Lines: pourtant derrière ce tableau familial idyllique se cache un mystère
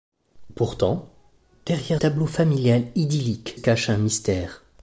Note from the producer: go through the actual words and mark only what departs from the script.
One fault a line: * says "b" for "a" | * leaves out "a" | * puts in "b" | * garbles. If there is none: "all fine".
* leaves out "ce"
* leaves out "se"